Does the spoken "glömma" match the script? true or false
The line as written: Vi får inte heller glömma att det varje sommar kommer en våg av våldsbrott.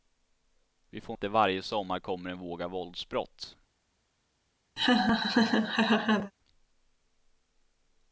false